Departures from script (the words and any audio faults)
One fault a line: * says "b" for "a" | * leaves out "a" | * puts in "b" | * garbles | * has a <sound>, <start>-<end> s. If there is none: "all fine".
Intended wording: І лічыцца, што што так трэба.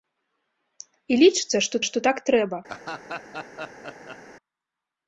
* has a laugh, 2.7-4.2 s